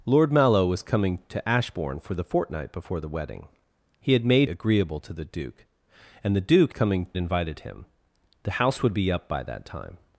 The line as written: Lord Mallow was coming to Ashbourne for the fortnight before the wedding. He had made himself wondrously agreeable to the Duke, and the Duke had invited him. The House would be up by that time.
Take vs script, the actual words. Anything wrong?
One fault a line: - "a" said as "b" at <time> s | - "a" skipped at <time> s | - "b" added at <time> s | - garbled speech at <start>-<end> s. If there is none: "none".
- "himself wondrously" skipped at 4.5 s
- "had" said as "coming" at 6.7 s